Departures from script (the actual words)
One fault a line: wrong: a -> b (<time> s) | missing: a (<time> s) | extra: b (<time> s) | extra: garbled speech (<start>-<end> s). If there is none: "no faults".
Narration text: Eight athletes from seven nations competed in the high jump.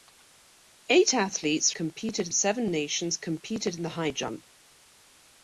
wrong: from -> competed (1.7 s)